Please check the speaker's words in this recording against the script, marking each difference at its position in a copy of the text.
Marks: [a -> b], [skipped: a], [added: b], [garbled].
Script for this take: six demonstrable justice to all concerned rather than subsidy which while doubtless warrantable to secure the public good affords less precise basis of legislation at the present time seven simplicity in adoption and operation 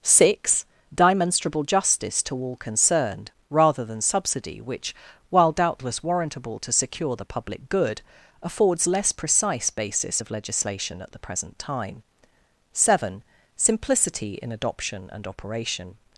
six demonstrable justice to all concerned rather than subsidy which while doubtless warrantable to secure the public good affords less precise basis of legislation at the present time seven simplicity in adoption and operation